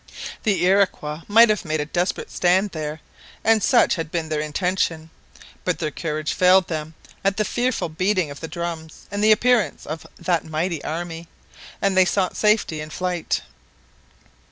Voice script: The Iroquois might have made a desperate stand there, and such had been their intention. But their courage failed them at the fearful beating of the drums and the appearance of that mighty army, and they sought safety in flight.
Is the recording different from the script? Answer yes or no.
no